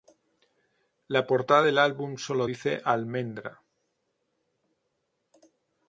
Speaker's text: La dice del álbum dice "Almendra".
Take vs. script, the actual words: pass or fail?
fail